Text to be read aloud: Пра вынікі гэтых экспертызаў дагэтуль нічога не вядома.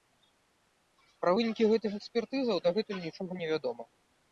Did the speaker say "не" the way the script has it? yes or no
yes